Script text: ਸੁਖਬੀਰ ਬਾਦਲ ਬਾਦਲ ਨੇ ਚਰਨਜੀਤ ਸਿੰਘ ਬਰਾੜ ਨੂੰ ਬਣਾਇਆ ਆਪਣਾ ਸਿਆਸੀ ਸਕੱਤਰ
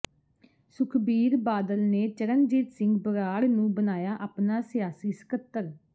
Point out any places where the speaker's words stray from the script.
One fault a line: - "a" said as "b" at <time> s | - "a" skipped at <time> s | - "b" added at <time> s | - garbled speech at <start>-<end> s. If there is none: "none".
- "ਬਾਦਲ" skipped at 1.8 s